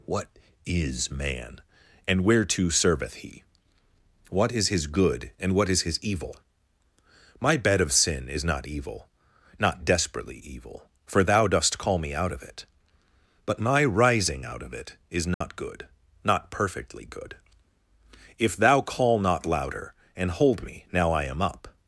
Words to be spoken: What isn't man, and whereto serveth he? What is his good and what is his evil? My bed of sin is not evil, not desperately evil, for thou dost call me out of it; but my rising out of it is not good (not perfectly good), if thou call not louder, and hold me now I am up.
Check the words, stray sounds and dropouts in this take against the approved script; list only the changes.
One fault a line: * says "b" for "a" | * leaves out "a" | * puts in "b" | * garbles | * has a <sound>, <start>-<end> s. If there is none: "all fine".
* says "is" for "isn't"
* has a dropout, 15.3-15.4 s